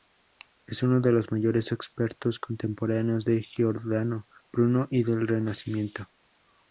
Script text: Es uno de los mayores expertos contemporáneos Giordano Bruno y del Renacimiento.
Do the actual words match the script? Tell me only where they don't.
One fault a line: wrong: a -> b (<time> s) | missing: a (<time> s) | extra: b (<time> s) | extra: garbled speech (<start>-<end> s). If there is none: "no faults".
extra: de (3.2 s)